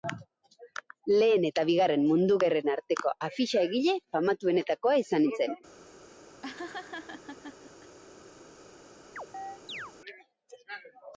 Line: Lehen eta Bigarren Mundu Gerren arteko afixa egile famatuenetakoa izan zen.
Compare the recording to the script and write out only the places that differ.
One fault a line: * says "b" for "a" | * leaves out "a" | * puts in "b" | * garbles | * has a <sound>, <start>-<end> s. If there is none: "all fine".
* has a laugh, 6.4-8.0 s
* has a chirp, 9.2-9.9 s